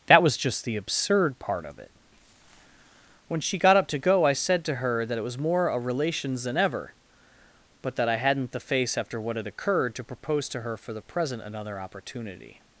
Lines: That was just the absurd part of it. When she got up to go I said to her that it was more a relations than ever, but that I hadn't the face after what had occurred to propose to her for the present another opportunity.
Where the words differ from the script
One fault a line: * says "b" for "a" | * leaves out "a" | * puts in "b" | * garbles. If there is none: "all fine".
all fine